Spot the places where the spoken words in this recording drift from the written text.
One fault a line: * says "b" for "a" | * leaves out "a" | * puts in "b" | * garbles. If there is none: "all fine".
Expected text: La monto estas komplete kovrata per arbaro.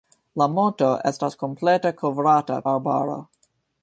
* leaves out "per"